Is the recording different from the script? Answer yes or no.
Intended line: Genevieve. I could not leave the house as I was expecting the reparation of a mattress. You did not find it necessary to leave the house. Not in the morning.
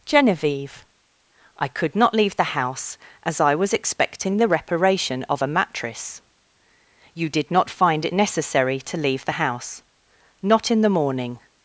no